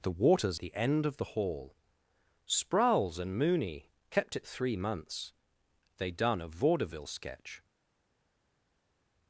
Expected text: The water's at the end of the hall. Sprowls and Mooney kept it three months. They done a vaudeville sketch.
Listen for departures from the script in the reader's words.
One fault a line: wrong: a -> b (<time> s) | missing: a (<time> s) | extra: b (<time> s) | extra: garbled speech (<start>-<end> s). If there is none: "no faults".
missing: at (0.6 s)